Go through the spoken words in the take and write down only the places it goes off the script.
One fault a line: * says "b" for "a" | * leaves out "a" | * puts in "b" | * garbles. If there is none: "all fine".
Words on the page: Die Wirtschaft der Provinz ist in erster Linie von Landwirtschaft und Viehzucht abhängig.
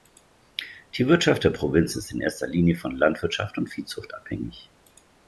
all fine